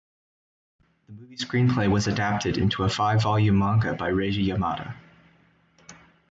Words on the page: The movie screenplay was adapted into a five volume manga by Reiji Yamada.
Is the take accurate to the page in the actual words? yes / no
yes